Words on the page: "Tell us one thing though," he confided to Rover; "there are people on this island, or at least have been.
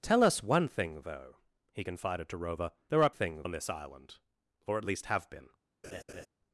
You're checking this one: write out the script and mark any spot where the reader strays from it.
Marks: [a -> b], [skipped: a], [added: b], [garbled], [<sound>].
"Tell us one thing though," he confided to Rover; "there are [people -> thing] on this island, or at least have been. [laugh]